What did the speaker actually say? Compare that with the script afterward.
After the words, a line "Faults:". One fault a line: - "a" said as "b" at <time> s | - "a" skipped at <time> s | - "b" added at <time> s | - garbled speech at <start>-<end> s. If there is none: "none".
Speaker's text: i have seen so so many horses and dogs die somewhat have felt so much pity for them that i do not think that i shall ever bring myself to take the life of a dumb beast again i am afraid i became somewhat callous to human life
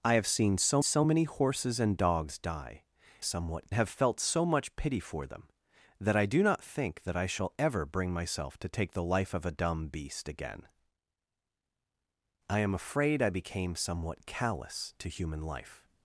i have seen so so many horses and dogs die somewhat have felt so much pity for them that i do not think that i shall ever bring myself to take the life of a dumb beast again i am afraid i became somewhat callous to human life
Faults:
none